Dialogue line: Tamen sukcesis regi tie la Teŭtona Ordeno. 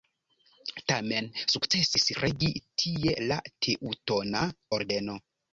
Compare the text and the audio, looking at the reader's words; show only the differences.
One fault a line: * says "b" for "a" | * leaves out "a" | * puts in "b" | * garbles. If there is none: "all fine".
all fine